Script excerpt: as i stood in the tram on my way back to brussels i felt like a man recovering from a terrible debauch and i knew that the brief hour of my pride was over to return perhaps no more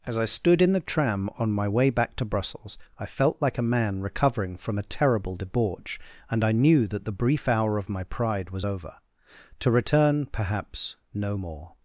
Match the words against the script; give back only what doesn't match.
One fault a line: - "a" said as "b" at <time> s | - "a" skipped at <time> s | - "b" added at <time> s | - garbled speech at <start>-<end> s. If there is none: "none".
none